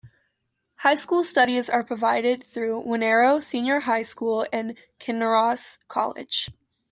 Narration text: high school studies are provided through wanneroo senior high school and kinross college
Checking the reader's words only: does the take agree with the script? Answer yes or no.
yes